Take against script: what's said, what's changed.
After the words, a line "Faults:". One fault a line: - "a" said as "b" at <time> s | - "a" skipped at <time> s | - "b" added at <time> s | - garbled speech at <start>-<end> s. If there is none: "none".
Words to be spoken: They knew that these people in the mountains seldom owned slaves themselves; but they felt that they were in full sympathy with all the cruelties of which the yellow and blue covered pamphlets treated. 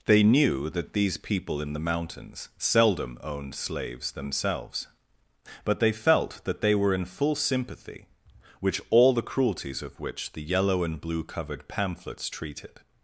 They knew that these people in the mountains seldom owned slaves themselves; but they felt that they were in full sympathy which all the cruelties of which the yellow and blue covered pamphlets treated.
Faults:
- "with" said as "which" at 8.6 s